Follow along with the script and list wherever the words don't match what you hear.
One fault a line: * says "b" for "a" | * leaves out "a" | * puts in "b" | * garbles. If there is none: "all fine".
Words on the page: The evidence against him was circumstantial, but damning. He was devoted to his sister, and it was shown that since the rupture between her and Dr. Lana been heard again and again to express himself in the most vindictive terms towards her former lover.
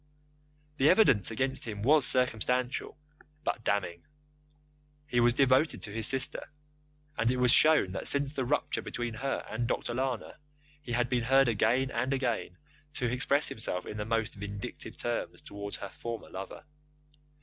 * puts in "he had"